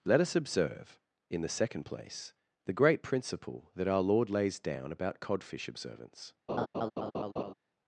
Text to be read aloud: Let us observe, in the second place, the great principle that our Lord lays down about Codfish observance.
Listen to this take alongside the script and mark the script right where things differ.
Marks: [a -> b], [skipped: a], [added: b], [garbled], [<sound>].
Let us observe, in the second place, the great principle that our Lord lays down about Codfish observance. [laugh]